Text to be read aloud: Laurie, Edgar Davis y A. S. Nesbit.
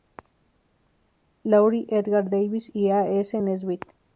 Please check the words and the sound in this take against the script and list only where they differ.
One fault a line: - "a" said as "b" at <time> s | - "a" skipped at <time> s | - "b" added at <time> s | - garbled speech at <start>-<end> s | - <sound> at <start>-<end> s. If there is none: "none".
none